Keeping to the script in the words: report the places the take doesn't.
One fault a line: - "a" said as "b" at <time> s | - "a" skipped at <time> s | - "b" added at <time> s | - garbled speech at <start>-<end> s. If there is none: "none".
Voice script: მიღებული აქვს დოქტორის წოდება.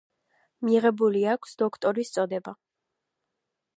none